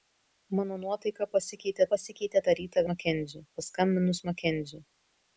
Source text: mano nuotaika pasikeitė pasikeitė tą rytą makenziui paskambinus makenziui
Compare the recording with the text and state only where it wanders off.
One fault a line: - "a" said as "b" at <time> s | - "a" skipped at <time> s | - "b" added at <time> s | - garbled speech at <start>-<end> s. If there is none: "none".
none